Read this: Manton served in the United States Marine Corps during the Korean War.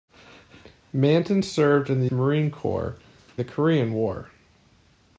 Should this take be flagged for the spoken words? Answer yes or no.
yes